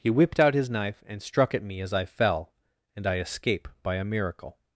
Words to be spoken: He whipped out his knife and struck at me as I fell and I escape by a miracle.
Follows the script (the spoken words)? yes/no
yes